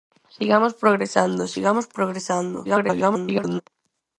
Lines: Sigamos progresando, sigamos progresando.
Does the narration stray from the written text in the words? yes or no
yes